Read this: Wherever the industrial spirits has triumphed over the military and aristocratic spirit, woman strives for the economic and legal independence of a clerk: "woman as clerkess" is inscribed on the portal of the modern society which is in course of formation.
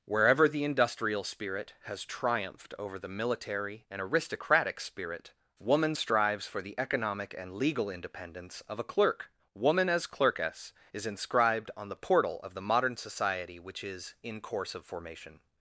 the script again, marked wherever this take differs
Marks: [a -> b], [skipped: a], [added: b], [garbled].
Wherever the industrial [spirits -> spirit] has triumphed over the military and aristocratic spirit, woman strives for the economic and legal independence of a clerk: "woman as clerkess" is inscribed on the portal of the modern society which is in course of formation.